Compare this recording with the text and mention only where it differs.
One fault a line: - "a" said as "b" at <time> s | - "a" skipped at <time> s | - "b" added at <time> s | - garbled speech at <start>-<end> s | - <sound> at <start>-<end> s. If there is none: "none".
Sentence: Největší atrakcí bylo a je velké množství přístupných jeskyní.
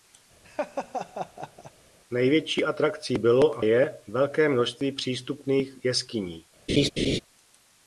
- laugh at 0.4-1.7 s
- laugh at 6.7-7.2 s